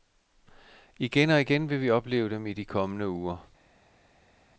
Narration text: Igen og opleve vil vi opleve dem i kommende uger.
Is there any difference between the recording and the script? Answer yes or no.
yes